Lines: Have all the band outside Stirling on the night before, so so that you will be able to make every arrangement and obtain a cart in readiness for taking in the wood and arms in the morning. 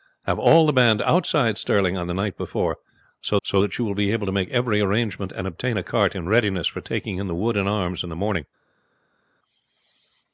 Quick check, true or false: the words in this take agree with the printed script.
true